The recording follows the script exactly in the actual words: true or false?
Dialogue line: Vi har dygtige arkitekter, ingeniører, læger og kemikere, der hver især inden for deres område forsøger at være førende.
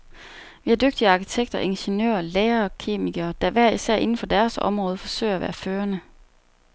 true